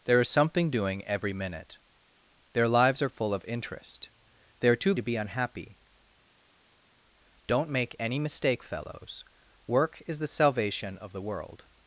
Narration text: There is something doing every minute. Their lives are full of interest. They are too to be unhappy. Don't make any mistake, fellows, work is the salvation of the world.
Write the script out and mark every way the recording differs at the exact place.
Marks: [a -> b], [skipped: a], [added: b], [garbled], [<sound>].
There is something doing every minute. Their lives are full of interest. They are too to be unhappy. Don't make any mistake, fellows, work is the salvation of the world.